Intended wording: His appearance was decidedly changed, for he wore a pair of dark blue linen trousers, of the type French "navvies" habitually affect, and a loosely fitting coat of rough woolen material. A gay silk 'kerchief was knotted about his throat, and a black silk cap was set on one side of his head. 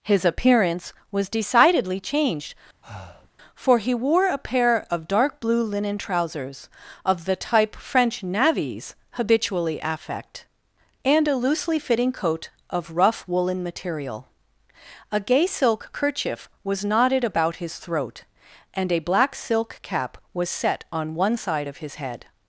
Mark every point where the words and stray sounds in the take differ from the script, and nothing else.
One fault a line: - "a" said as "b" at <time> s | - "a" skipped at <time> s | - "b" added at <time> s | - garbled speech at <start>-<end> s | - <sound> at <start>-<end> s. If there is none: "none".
- breath at 2.8-3.3 s